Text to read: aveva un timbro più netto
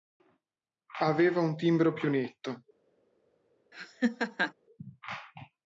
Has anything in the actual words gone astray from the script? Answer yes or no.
no